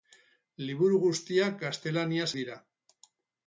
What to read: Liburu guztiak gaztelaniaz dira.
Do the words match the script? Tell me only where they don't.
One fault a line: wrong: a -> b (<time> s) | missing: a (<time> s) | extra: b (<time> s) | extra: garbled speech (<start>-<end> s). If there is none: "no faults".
no faults